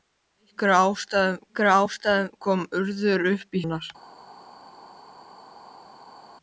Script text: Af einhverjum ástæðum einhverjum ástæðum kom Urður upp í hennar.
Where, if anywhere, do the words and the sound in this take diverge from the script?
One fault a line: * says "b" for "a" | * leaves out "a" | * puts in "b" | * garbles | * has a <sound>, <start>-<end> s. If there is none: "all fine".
all fine